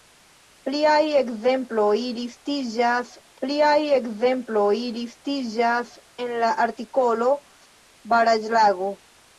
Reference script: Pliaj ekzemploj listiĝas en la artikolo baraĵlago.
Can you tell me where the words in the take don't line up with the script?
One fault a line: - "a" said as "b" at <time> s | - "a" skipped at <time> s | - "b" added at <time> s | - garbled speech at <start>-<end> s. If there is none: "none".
- "pliaj ekzemploj listiĝas" added at 3.4 s